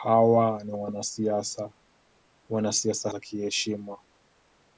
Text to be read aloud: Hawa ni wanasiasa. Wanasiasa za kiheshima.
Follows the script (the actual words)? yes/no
yes